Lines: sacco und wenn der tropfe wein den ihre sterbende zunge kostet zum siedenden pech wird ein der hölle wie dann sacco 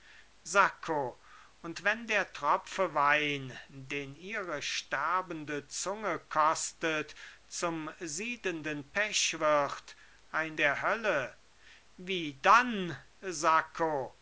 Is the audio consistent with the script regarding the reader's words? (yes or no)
yes